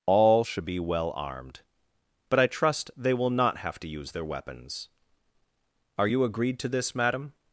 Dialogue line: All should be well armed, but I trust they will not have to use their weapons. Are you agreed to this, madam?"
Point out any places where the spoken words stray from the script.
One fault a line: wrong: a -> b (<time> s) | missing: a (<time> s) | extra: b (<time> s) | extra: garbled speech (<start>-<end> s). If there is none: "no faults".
no faults